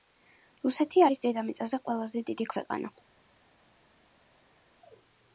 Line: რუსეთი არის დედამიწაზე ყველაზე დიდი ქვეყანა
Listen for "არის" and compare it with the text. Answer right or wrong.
right